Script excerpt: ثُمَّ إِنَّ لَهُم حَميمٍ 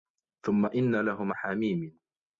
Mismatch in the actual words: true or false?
false